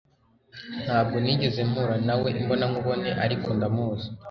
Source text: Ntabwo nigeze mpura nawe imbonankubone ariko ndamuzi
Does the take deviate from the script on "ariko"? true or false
false